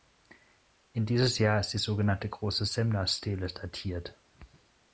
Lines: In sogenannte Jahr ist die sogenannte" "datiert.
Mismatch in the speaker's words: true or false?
true